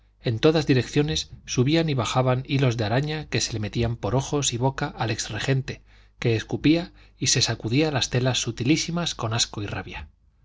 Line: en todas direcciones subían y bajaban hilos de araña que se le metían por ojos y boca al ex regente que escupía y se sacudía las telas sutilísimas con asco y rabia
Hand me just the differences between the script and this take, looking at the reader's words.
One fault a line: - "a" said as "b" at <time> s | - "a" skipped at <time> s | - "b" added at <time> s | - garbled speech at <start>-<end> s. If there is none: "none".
none